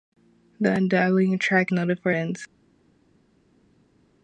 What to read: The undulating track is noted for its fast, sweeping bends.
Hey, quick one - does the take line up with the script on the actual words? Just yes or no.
no